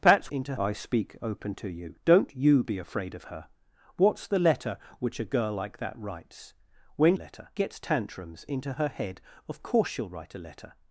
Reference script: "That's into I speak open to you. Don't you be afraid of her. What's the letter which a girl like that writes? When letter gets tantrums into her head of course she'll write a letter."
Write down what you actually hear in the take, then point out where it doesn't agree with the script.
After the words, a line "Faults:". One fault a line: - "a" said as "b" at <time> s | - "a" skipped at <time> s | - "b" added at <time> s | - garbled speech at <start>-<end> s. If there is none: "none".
"That's into I speak open to you. Don't you be afraid of her. What's the letter which a girl like that writes? When letter gets tantrums into her head of course she'll write a letter."
Faults:
none